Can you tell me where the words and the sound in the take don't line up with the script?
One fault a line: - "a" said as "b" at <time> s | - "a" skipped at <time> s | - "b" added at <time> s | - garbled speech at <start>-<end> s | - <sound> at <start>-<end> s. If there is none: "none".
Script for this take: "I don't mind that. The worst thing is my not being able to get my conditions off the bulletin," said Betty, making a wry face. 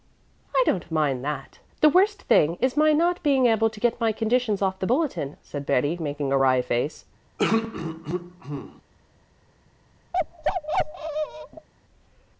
- throat clearing at 7.4-8.8 s
- bark at 10.1-11.7 s